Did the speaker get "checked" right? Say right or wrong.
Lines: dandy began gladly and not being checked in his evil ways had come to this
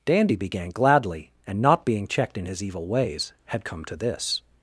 right